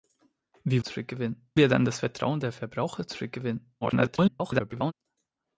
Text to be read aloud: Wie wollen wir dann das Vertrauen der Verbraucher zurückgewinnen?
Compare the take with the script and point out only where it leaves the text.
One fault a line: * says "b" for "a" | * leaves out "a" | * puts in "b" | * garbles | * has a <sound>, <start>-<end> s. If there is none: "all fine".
* says "zurückgewinnen" for "wollen"
* garbles